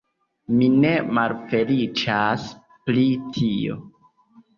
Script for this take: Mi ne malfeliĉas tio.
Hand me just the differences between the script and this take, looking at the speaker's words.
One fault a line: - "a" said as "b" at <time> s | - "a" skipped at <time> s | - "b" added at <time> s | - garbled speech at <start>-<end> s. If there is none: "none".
- "pri" added at 2.9 s